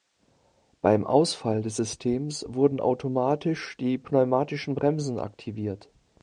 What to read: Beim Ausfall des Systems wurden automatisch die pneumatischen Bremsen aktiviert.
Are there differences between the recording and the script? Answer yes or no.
no